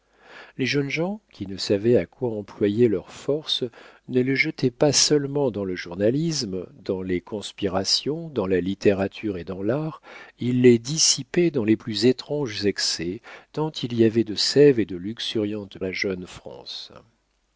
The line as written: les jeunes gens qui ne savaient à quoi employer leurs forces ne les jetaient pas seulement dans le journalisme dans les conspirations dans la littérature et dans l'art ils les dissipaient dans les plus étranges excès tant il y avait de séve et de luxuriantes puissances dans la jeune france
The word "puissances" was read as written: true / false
false